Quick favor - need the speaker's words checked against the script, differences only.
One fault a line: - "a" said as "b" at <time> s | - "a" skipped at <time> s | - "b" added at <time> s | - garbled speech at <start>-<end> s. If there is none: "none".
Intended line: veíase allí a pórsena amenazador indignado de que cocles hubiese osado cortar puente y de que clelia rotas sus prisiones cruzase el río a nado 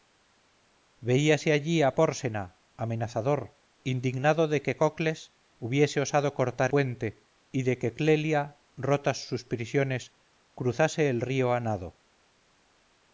none